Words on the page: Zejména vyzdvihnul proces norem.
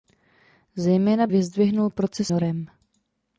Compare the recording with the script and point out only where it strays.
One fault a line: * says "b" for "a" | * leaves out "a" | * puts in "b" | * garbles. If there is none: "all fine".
all fine